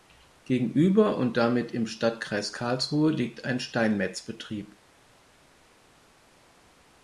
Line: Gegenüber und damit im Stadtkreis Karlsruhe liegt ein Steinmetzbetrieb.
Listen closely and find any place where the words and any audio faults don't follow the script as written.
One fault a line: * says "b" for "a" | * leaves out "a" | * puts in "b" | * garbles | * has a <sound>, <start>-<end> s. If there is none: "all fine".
all fine